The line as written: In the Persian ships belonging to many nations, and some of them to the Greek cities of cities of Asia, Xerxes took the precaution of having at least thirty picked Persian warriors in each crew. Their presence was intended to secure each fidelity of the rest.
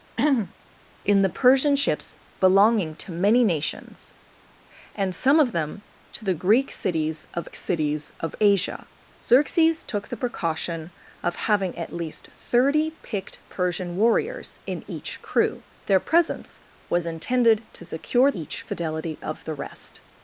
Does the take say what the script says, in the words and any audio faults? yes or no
no